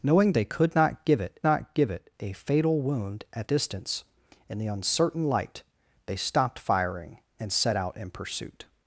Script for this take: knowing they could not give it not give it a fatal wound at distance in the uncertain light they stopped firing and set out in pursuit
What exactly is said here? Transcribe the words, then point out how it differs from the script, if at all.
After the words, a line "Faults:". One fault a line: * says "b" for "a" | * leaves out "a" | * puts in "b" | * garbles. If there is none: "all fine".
knowing they could not give it not give it a fatal wound at distance in the uncertain light they stopped firing and set out in pursuit
Faults:
all fine